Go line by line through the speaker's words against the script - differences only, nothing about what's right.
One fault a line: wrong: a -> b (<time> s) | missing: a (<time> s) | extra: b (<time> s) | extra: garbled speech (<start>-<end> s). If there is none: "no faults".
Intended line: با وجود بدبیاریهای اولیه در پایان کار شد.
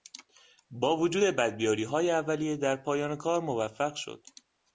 extra: موفق (3.4 s)